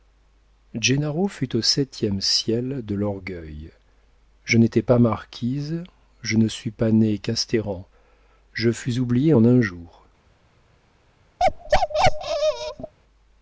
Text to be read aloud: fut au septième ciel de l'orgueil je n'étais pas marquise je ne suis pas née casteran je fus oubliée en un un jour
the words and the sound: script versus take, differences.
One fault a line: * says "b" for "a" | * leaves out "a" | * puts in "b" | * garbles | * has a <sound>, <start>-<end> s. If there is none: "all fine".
* leaves out "un"
* has a bark, 11.4-12.9 s